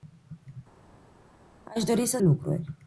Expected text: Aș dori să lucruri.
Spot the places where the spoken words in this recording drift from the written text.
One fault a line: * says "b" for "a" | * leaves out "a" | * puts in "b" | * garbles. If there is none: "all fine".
all fine